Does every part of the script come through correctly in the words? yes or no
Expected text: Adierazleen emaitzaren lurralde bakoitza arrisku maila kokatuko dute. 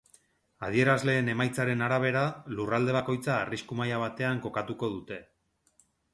no